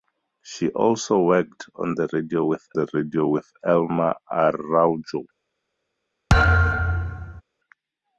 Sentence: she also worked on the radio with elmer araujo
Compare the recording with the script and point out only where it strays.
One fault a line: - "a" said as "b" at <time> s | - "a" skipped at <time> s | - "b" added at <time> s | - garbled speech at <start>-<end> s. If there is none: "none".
- "the radio with" added at 2.7 s